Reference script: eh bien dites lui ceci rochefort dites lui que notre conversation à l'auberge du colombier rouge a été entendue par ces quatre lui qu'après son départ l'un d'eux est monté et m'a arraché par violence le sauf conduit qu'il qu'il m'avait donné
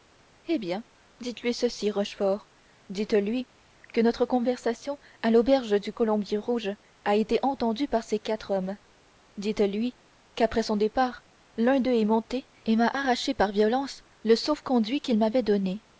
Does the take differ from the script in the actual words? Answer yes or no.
yes